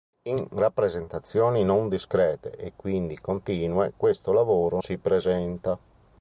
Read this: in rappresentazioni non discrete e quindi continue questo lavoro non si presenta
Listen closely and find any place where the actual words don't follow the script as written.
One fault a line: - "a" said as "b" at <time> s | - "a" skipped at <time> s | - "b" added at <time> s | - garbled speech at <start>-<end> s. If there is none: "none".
- "non" skipped at 4.8 s